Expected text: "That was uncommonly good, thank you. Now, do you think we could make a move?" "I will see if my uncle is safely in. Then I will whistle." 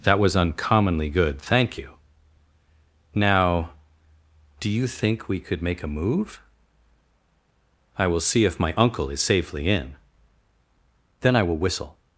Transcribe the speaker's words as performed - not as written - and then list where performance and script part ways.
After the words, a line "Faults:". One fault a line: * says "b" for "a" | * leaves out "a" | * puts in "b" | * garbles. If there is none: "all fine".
"That was uncommonly good, thank you. Now, do you think we could make a move?" "I will see if my uncle is safely in. Then I will whistle."
Faults:
all fine